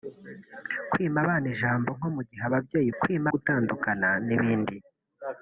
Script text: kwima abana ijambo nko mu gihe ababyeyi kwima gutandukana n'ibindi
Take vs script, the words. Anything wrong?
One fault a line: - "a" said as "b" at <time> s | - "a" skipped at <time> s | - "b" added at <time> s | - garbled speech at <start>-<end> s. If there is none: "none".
none